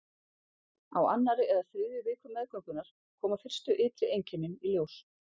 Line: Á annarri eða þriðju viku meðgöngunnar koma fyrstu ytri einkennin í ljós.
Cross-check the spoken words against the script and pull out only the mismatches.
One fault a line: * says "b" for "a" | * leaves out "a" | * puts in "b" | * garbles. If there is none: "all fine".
all fine